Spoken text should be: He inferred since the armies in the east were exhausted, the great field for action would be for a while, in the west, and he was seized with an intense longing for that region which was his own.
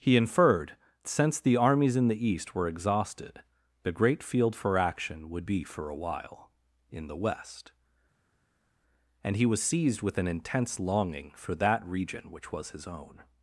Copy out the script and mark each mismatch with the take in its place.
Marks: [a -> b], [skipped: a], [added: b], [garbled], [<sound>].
He inferred since the armies in the east were exhausted, the great field for action would be for a while, in the west, and he was seized with an intense longing for that region which was his own.